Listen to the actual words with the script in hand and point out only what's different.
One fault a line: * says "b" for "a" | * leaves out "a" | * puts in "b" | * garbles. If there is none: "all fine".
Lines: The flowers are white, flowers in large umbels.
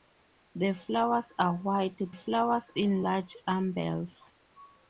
all fine